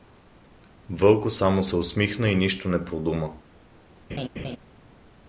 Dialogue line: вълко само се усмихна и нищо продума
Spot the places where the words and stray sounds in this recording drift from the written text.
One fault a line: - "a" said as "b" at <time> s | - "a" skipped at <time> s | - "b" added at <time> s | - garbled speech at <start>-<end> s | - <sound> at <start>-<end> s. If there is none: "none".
- "не" added at 2.7 s
- laugh at 4.1-4.6 s